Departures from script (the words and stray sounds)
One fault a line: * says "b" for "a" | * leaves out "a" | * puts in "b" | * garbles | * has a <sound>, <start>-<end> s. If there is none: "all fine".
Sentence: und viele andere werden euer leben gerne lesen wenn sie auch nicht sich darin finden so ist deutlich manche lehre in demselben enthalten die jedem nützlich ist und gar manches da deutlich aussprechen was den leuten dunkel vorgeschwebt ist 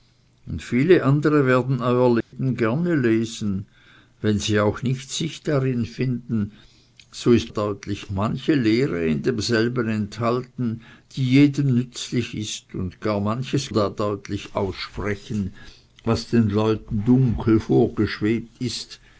* has a dropout, 2.2-2.3 s